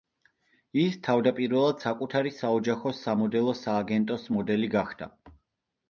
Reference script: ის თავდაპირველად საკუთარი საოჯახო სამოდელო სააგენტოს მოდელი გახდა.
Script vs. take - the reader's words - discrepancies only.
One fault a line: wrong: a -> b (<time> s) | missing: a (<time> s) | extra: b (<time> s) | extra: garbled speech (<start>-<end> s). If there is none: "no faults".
no faults